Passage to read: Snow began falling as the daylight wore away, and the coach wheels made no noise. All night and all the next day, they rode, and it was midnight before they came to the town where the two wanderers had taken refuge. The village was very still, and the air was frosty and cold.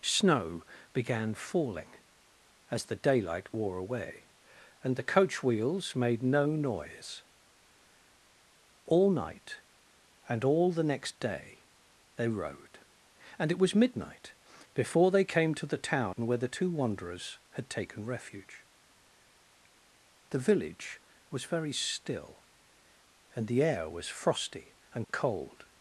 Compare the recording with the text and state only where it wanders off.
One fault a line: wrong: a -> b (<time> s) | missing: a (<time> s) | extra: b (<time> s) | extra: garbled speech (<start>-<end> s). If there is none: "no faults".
no faults